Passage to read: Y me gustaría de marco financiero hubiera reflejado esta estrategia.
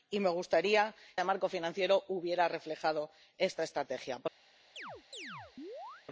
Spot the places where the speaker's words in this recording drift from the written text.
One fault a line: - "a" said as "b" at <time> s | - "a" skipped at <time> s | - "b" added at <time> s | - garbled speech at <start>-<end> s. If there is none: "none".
none